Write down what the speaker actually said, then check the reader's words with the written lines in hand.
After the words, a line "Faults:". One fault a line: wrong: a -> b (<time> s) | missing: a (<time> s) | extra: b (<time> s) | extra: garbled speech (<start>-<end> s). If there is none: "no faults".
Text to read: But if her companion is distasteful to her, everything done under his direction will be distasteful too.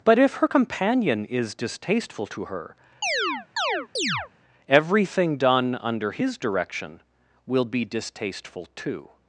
But if her companion is distasteful to her, everything done under his direction will be distasteful too.
Faults:
no faults